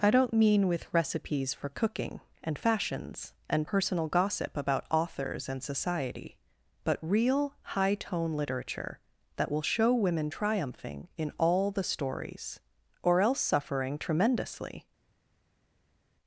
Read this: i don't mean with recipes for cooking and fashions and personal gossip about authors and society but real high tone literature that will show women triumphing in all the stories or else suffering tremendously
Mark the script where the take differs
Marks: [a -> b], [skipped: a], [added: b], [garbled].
i don't mean with recipes for cooking and fashions and personal gossip about authors and society but real high tone literature that will show women triumphing in all the stories or else suffering tremendously